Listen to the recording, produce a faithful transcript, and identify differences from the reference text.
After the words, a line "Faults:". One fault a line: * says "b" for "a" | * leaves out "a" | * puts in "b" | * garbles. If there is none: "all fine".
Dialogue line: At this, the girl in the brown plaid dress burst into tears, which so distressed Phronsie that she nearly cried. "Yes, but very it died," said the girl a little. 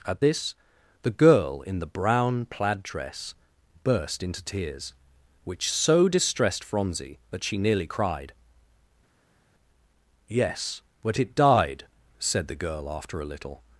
At this, the girl in the brown plaid dress burst into tears, which so distressed Phronsie that she nearly cried. "Yes, but it died," said the girl after a little.
Faults:
* leaves out "very"
* puts in "after"